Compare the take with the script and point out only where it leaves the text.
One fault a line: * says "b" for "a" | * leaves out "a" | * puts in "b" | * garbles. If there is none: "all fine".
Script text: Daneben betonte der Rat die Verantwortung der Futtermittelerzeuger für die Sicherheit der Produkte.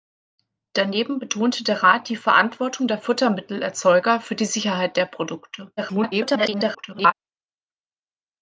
* garbles